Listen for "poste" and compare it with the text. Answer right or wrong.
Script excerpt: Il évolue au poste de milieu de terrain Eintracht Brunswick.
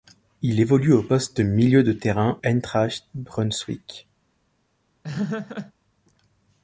right